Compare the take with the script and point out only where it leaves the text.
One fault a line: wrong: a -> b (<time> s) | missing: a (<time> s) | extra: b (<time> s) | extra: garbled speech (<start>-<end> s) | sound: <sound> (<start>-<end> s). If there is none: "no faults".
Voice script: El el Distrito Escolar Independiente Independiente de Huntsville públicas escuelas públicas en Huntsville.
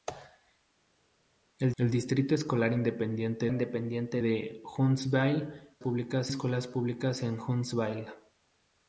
no faults